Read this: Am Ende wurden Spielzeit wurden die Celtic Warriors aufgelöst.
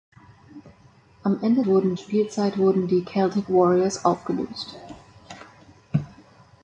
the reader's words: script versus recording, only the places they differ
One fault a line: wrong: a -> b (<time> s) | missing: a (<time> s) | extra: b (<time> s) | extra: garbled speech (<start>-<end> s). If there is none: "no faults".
no faults